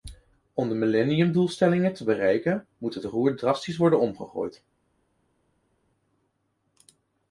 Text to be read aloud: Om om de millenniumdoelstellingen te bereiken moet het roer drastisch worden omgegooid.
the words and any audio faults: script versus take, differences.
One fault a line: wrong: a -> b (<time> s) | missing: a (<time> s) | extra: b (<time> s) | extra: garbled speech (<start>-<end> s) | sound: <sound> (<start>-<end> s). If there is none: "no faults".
missing: om (0.7 s)